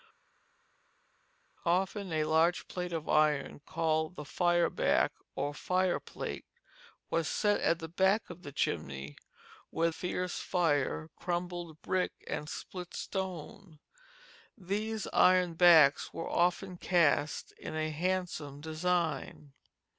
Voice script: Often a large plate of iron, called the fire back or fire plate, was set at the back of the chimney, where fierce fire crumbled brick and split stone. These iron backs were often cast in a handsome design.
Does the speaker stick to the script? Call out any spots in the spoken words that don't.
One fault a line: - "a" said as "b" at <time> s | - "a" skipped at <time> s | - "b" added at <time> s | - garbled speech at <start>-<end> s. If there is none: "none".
none